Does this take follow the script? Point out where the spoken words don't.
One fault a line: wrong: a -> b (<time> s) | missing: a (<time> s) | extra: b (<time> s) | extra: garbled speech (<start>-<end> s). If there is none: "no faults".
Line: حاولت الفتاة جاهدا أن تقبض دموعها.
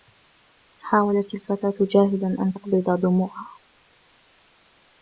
no faults